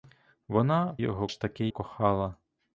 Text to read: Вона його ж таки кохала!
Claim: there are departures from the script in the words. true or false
false